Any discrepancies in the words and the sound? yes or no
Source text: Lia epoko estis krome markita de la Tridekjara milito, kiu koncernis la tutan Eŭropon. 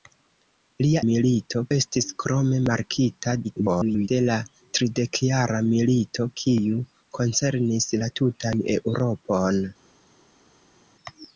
yes